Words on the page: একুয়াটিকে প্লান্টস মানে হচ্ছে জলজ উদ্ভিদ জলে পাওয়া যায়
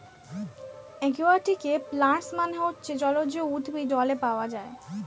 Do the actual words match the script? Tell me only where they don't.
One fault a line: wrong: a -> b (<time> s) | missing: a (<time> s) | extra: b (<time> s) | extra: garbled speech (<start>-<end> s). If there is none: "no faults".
no faults